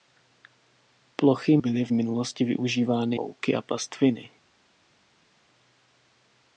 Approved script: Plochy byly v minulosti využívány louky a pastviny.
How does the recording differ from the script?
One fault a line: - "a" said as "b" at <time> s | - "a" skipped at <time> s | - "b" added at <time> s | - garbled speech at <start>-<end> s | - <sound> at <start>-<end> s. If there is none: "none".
none